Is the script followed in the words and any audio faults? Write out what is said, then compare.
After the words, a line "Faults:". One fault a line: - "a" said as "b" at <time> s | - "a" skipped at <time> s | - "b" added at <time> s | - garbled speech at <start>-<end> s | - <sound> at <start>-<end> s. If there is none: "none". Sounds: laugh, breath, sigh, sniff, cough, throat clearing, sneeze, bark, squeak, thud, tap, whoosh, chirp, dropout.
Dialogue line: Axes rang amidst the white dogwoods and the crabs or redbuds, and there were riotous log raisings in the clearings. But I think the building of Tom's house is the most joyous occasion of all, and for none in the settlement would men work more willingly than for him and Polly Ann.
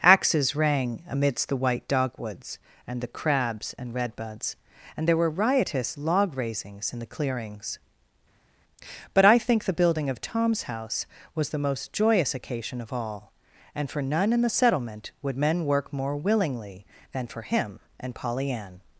Axes rang amidst the white dogwoods and the crabs and redbuds, and there were riotous log raisings in the clearings. But I think the building of Tom's house was the most joyous occasion of all, and for none in the settlement would men work more willingly than for him and Polly Ann.
Faults:
- "or" said as "and" at 3.8 s
- "is" said as "was" at 11.3 s